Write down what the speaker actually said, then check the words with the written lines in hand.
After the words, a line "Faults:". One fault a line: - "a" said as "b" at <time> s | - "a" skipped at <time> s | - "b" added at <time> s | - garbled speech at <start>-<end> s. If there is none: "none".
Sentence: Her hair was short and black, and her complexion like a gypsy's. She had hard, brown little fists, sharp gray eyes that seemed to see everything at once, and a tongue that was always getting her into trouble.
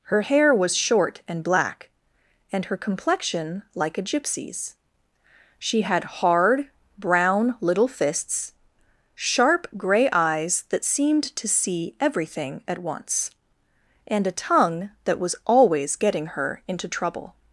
Her hair was short and black, and her complexion like a gypsy's. She had hard, brown little fists, sharp gray eyes that seemed to see everything at once, and a tongue that was always getting her into trouble.
Faults:
none